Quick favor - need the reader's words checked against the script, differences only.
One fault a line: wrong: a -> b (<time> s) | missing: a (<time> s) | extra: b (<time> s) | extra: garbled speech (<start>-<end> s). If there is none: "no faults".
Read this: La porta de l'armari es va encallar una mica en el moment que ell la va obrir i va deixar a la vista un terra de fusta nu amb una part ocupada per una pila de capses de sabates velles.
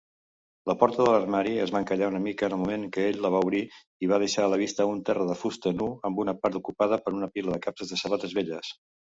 no faults